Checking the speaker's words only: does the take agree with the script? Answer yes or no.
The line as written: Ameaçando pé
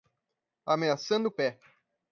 yes